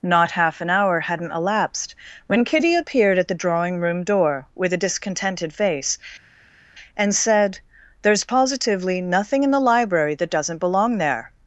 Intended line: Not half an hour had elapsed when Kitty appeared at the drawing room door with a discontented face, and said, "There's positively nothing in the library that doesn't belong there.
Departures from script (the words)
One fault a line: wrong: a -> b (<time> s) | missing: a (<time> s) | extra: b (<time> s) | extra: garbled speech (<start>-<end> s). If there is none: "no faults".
wrong: had -> hadn't (1.0 s)